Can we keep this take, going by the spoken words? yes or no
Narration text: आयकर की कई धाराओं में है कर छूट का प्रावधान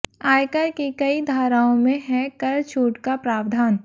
yes